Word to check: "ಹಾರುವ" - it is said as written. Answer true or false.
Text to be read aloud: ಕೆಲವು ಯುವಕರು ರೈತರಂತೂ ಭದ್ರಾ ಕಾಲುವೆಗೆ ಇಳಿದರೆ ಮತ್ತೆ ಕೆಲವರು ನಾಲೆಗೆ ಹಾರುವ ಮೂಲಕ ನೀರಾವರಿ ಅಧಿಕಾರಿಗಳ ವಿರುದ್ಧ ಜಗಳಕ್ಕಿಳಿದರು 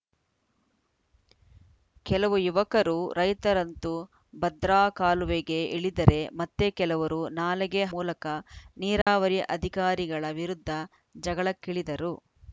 false